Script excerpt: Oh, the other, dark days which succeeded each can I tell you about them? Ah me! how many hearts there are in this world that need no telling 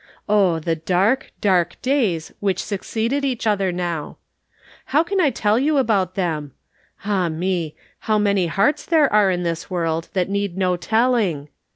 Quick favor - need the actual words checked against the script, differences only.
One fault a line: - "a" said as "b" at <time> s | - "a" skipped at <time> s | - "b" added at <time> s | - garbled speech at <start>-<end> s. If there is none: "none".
- "other" said as "dark" at 0.8 s
- "other now How" added at 3.5 s